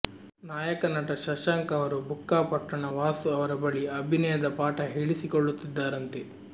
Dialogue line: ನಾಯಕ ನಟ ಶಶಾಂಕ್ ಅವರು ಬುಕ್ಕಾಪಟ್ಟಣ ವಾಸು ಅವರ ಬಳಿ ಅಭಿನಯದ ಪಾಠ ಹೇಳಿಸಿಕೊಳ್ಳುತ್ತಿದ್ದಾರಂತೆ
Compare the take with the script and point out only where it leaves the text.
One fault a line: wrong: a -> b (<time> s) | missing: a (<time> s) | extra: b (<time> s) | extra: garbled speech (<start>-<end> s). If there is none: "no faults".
no faults